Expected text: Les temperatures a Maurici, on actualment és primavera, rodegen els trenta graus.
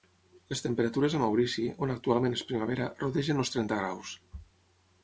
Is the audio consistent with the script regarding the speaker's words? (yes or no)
yes